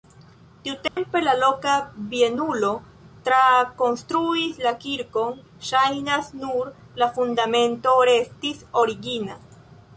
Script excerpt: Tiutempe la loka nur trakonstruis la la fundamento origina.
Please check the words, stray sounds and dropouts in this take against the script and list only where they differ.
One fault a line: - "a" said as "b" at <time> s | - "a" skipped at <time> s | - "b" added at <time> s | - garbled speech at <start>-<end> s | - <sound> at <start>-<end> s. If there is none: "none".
- dropout at 0.9-1.0 s
- "nur" said as "bienulo" at 2.1 s
- "kirkon ŝajnas nur" added at 4.9 s
- "restis" added at 8.2 s